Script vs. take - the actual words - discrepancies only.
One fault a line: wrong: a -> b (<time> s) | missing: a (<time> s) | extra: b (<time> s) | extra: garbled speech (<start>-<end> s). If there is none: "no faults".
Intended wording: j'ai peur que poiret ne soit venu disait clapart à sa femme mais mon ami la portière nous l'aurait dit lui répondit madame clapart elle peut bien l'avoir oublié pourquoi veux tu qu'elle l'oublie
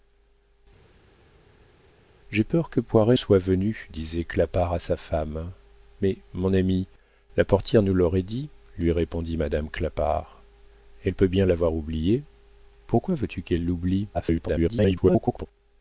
missing: ne (3.2 s)
extra: garbled speech (14.1-15.5 s)